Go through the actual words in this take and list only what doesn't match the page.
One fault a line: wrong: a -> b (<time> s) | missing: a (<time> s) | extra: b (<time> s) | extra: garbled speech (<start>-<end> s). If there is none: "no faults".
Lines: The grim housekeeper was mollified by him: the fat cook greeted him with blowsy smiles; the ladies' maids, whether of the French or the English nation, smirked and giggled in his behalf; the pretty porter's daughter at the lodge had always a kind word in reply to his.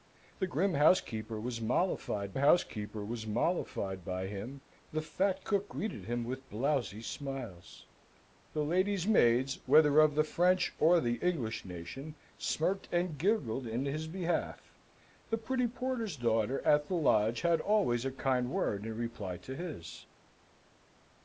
extra: housekeeper was mollified (2.4 s)